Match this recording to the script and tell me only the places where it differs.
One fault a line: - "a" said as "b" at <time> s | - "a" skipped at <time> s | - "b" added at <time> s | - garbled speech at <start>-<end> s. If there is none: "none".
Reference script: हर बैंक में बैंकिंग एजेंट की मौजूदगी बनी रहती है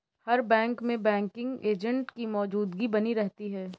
none